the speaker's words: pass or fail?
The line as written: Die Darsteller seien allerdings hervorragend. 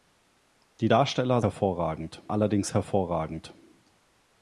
fail